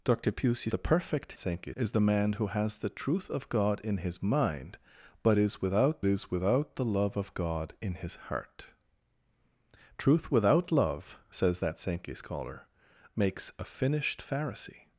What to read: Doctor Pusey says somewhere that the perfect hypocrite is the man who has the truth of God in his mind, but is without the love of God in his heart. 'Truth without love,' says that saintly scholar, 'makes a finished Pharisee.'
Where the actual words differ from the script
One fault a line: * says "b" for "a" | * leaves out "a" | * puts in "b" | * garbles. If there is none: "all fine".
* leaves out "says somewhere that"
* says "saintly" for "hypocrite"
* puts in "is without"